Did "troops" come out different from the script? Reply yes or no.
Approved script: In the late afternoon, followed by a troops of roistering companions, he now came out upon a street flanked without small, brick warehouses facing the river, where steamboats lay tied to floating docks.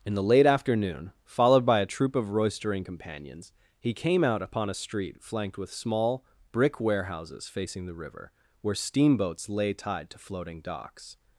yes